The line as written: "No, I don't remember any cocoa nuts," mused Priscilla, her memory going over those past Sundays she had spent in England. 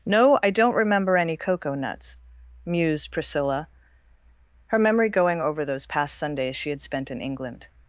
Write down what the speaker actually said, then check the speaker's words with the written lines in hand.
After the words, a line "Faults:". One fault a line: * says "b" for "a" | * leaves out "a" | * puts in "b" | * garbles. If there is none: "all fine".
"No, I don't remember any cocoa nuts," mused Priscilla, her memory going over those past Sundays she had spent in England.
Faults:
all fine